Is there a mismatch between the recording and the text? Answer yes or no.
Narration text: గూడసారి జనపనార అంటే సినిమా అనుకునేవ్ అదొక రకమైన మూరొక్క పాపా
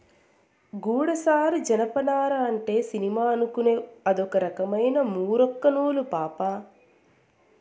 yes